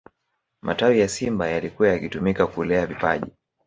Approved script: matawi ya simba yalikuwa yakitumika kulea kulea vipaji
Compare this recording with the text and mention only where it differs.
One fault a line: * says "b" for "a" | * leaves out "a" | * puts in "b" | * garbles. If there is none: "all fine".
* leaves out "kulea"